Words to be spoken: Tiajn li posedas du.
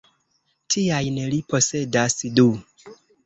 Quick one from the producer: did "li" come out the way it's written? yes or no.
yes